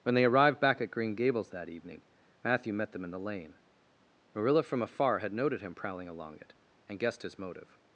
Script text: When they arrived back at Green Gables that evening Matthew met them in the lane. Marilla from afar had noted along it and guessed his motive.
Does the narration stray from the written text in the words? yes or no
yes